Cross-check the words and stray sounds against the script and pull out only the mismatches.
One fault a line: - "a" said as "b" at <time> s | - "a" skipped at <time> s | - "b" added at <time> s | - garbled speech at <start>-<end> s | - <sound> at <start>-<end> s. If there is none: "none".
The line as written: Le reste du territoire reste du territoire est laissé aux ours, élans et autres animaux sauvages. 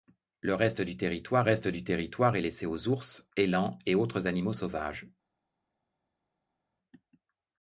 none